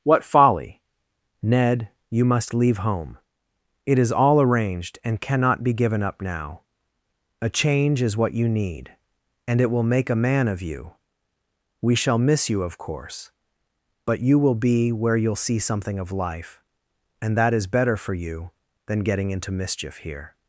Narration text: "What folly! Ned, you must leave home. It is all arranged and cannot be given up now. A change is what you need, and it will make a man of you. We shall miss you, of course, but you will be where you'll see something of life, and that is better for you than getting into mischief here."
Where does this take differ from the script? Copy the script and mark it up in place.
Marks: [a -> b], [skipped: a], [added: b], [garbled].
"What folly! Ned, you must leave home. It is all arranged and cannot be given up now. A change is what you need, and it will make a man of you. We shall miss you, of course, but you will be where you'll see something of life, and that is better for you than getting into mischief here."